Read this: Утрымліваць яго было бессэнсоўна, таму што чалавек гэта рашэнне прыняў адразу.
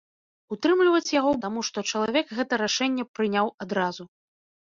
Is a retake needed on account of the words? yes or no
yes